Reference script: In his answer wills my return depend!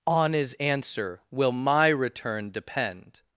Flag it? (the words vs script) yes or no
yes